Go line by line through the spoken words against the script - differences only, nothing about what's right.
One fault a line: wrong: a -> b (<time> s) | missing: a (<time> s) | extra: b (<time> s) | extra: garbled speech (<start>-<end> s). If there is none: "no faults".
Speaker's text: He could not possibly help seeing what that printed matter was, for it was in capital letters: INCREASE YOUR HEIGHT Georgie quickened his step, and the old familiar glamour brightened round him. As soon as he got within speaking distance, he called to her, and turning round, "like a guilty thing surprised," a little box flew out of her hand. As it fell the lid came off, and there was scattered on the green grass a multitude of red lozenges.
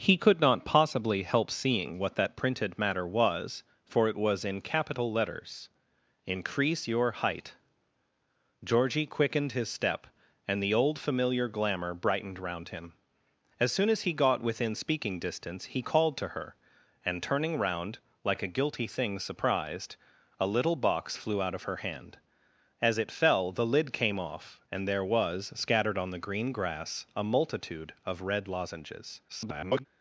extra: garbled speech (29.3-29.9 s)